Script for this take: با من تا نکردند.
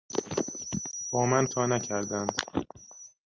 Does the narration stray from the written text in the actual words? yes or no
no